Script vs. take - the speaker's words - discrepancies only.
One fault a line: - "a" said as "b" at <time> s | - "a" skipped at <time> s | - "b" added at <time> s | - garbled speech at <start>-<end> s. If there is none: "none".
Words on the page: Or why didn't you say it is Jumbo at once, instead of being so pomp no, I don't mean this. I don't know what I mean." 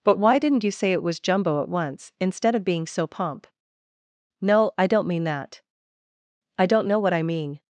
- "Or" said as "But" at 0.0 s
- "is" said as "was" at 1.0 s
- "this" said as "that" at 5.2 s